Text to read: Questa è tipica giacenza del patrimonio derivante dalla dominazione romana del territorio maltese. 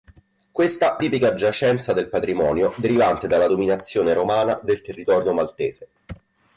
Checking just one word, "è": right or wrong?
right